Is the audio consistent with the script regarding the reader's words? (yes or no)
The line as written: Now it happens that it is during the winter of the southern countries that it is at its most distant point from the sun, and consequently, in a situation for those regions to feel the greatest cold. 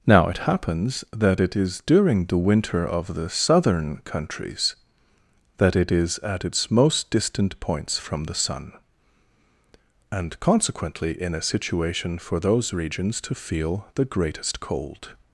no